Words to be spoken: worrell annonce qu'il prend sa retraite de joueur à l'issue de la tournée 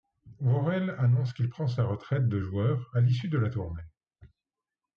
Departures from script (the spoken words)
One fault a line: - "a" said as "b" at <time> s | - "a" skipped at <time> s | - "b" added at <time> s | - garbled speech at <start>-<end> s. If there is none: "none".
none